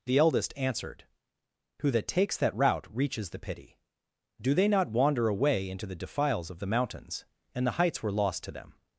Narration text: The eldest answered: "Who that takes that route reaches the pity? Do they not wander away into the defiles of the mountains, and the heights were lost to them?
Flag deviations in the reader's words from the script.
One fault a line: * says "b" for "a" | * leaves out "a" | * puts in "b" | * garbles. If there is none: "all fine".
all fine